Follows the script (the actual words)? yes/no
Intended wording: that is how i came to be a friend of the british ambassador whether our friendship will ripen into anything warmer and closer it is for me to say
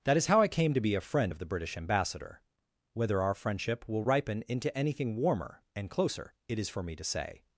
yes